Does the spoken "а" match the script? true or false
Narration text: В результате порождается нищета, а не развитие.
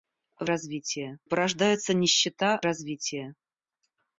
false